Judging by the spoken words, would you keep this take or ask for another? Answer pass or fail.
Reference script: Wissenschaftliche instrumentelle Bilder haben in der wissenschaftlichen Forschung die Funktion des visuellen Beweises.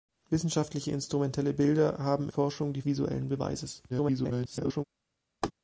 fail